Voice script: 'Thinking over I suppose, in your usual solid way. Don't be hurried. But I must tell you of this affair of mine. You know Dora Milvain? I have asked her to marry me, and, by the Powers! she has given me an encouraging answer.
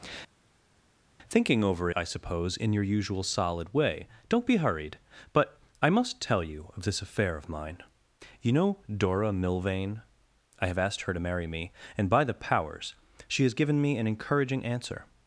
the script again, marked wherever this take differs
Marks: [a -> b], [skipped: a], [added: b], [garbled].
'Thinking over I suppose, in your usual solid way. Don't be hurried. But I must tell you of this affair of mine. You know Dora Milvain? I have asked her to marry me, and, by the Powers! she has given me an encouraging answer.